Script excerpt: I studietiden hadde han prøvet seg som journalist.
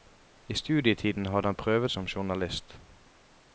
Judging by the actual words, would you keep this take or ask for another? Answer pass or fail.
fail